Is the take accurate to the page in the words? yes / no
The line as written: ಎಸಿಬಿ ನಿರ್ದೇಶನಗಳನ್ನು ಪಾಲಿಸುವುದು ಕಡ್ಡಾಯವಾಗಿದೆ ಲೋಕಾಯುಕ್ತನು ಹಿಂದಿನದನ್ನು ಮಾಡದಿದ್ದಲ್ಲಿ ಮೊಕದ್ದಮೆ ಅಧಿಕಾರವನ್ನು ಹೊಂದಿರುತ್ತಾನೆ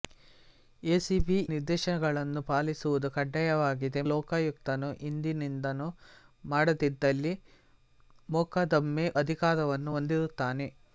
yes